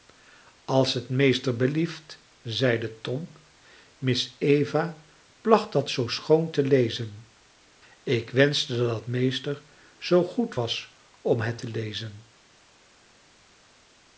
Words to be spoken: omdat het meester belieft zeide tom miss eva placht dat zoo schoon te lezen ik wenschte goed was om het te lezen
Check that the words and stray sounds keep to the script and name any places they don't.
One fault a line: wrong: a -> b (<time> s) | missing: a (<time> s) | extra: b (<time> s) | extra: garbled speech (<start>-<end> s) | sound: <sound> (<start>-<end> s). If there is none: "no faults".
wrong: omdat -> als (0.7 s)
extra: dat meester zoo (8.8 s)